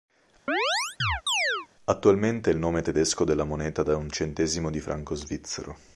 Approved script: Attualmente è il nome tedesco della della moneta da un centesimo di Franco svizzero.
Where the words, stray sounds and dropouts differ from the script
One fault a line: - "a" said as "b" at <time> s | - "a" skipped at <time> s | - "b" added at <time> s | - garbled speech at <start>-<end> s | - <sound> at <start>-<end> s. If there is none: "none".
- chirp at 0.5-1.7 s
- "della" skipped at 3.5 s